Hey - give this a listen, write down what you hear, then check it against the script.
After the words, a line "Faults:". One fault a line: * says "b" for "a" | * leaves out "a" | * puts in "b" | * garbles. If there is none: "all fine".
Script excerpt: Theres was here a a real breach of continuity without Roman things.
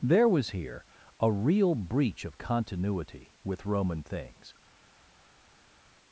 There was here a real breach of continuity with Roman things.
Faults:
* says "There" for "Theres"
* leaves out "a"
* says "with" for "without"